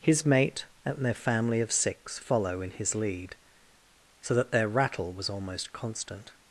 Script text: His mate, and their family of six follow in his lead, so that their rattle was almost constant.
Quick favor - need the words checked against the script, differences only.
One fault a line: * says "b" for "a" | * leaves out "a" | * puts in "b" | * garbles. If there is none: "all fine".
all fine